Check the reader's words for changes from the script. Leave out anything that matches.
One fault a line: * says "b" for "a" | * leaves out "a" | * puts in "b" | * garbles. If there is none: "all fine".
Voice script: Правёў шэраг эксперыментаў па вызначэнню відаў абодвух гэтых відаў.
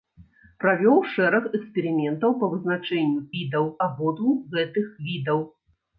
all fine